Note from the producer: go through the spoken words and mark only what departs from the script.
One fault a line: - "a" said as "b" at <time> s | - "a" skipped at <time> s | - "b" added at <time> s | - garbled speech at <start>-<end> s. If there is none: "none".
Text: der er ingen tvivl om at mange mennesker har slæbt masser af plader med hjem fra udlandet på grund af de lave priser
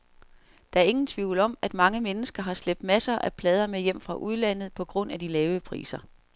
none